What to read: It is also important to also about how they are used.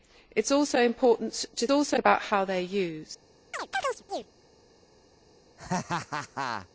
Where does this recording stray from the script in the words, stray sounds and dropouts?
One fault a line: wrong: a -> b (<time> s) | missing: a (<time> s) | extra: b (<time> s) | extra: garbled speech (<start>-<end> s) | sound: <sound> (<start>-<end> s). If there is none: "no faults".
sound: chirp (3.5-4.3 s)
sound: laugh (5.6-6.7 s)